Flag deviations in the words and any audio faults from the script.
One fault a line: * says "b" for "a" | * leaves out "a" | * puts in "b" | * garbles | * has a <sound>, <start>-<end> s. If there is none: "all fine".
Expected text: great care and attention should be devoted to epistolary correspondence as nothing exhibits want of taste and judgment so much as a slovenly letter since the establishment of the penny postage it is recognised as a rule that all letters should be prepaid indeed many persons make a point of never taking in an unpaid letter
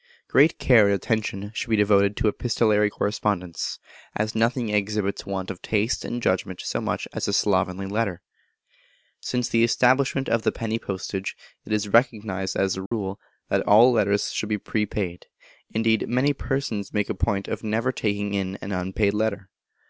* has a dropout, 12.9-12.9 s